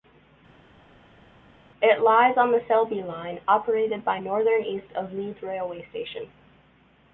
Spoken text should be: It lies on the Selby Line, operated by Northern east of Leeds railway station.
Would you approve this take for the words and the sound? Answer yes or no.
yes